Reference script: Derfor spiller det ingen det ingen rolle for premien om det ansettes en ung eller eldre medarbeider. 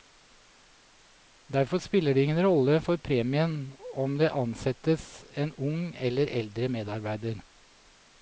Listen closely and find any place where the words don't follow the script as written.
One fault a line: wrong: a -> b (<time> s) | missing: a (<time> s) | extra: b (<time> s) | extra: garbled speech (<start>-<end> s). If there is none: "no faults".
missing: det ingen (2.5 s)